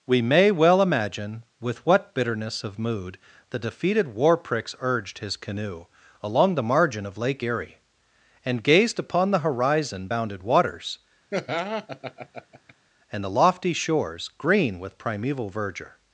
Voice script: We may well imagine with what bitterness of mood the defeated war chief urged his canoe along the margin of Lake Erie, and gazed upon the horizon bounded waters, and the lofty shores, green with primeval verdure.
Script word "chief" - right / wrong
wrong